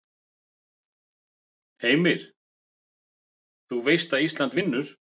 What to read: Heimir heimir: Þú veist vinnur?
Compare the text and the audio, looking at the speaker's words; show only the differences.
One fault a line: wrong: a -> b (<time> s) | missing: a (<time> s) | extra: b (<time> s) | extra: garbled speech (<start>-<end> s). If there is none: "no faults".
missing: heimir (2.2 s)
extra: að Ísland (4.2 s)